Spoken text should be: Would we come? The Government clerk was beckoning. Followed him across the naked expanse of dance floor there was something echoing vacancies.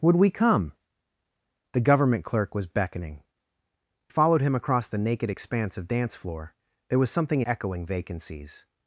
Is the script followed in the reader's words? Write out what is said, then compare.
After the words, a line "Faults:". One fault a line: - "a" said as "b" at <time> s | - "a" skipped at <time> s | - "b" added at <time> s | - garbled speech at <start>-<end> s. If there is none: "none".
Would we come? The Government clerk was beckoning. Followed him across the naked expanse of dance floor there was something echoing vacancies.
Faults:
none